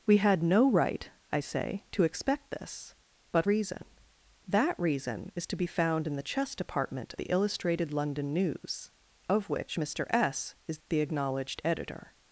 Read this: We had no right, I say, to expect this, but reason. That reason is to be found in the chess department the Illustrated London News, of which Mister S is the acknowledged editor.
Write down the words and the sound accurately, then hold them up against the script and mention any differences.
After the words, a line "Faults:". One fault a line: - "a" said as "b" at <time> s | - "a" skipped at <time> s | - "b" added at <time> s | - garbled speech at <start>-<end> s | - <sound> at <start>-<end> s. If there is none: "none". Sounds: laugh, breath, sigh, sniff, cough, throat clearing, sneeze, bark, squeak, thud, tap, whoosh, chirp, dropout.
We had no right, I say, to expect this, but reason. That reason is to be found in the chess department the Illustrated London News, of which Mister S is the acknowledged editor.
Faults:
none